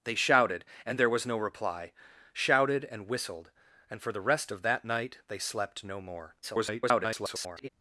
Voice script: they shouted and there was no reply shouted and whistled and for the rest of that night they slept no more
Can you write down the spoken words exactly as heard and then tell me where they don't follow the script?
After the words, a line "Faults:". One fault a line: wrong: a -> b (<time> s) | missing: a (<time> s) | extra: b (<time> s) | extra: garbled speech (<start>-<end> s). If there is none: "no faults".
they shouted and there was no reply shouted and whistled and for the rest of that night they slept no more [garbled]
Faults:
extra: garbled speech (6.4-7.7 s)